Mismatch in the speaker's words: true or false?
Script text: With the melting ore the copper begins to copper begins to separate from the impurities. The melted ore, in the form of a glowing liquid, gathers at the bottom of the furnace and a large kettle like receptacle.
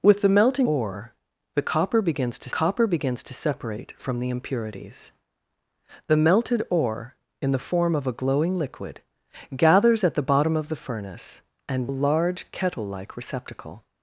false